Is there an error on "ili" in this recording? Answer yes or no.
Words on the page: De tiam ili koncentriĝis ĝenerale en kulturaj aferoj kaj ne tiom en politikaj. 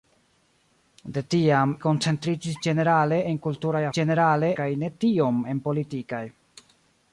yes